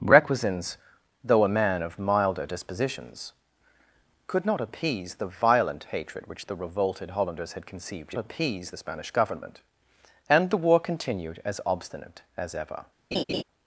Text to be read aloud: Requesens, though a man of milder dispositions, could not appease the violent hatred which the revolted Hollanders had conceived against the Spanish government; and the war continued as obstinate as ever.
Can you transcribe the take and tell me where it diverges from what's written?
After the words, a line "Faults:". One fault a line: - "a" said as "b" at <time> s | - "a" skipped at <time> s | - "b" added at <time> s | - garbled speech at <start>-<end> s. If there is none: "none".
Requesens, though a man of milder dispositions, could not appease the violent hatred which the revolted Hollanders had conceived appease the Spanish government; and the war continued as obstinate as ever.
Faults:
- "against" said as "appease" at 8.2 s